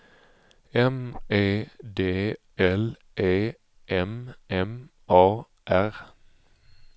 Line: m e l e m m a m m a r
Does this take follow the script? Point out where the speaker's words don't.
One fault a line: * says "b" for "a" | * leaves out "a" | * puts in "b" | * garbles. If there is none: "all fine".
* puts in "d"
* leaves out "m m a"